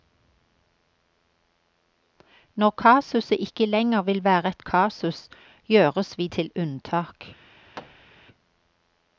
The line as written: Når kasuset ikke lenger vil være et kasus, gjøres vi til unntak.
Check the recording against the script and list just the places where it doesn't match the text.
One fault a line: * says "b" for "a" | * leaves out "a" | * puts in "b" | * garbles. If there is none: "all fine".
all fine